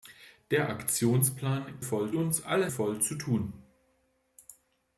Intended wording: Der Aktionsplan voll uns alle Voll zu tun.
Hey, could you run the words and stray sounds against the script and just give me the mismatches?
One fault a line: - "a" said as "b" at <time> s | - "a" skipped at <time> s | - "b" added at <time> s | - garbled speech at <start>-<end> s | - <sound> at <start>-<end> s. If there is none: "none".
none